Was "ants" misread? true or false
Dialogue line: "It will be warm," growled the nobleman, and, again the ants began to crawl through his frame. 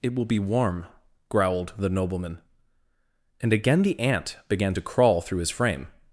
true